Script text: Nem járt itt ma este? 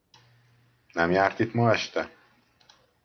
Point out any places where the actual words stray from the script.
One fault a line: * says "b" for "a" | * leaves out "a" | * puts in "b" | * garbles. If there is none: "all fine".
all fine